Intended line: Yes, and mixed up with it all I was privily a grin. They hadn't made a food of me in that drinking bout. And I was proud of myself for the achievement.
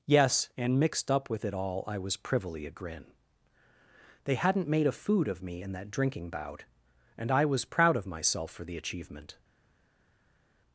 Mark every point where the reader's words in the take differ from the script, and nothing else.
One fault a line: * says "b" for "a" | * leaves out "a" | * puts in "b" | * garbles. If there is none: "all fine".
all fine